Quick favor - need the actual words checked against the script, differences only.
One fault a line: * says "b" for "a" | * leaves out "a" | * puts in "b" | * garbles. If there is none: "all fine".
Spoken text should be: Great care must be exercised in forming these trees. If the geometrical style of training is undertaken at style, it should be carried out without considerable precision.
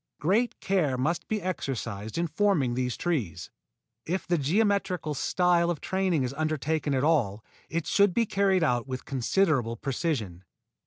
* says "all" for "style"
* says "with" for "without"